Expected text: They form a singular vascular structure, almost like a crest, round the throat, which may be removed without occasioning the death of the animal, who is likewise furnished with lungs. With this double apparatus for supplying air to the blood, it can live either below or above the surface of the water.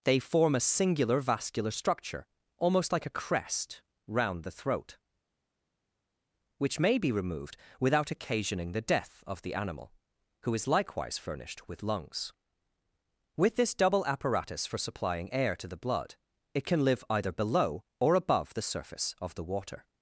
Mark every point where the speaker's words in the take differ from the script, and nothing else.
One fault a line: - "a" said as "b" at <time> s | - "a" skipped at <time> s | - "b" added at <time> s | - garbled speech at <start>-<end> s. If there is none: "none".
none